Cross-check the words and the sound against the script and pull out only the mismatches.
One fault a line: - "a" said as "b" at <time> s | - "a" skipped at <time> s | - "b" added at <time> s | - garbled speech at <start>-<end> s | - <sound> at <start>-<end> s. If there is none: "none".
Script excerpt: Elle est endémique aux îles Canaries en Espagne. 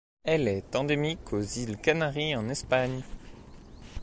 none